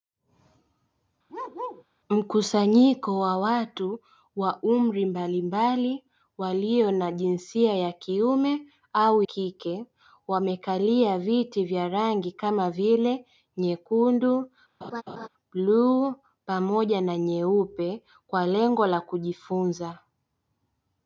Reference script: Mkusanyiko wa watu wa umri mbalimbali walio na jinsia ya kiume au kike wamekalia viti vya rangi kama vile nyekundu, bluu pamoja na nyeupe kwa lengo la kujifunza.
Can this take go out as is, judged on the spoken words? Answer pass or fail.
pass